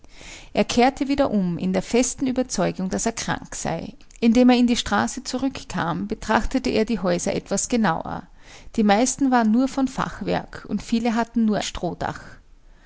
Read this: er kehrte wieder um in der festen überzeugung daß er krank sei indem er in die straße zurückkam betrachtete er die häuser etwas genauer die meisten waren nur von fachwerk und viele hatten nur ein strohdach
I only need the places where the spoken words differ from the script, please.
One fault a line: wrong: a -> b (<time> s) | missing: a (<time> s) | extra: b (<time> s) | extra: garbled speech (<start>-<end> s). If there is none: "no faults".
missing: ein (11.6 s)